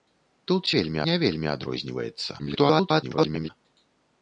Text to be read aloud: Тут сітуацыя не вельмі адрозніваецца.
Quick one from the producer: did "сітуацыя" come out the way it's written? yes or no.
no